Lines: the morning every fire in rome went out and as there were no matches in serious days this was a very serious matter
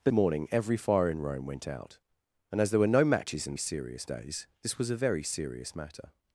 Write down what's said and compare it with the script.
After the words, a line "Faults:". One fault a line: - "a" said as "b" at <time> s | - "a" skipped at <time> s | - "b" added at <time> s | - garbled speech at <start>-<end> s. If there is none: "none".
the morning every fire in rome went out and as there were no matches in serious days this was a very serious matter
Faults:
none